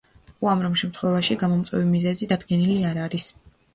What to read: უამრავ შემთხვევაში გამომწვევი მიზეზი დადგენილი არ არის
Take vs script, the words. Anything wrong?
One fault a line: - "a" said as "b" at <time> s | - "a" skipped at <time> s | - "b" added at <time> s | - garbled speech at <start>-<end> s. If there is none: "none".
none